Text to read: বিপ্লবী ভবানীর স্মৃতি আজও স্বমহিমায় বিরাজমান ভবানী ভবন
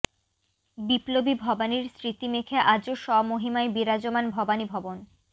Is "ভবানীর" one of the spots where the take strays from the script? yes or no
no